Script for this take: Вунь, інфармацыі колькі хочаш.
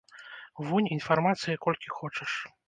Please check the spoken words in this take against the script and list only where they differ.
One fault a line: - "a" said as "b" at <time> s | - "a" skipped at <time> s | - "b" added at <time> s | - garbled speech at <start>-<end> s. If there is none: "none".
none